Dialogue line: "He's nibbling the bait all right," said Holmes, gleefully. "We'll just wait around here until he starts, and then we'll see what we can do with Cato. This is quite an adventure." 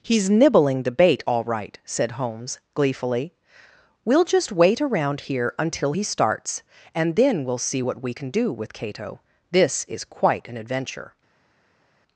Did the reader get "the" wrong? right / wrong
right